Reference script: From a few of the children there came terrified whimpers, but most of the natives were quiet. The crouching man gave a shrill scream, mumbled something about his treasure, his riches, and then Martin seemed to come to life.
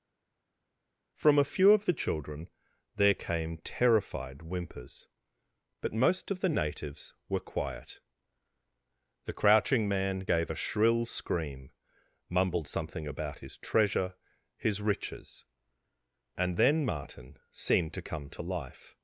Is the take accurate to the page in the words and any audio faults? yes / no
yes